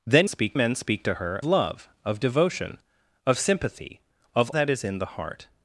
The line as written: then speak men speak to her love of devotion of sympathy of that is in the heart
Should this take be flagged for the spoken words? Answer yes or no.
no